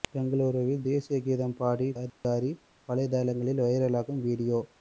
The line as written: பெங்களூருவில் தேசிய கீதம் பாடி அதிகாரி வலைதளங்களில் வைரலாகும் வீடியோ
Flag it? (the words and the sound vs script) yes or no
yes